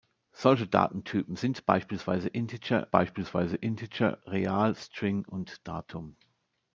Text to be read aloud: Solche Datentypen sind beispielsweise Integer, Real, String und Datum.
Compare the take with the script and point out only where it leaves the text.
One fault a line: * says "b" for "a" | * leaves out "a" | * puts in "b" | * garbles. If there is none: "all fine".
* puts in "beispielsweise Integer"